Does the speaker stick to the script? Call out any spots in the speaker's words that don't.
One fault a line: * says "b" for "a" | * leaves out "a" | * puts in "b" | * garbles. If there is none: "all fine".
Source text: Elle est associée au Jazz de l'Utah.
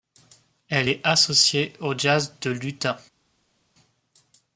all fine